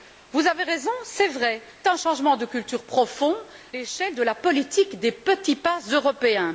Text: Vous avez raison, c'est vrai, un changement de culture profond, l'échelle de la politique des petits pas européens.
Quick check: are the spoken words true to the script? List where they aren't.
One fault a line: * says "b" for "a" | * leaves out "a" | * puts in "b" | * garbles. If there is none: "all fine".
all fine